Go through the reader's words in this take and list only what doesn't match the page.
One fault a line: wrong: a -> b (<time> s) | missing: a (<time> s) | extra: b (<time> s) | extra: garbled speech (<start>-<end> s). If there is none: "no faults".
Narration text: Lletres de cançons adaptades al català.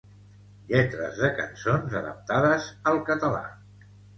no faults